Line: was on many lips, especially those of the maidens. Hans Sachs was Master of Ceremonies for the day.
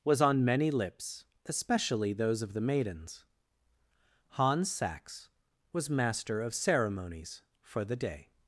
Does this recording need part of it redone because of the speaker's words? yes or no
no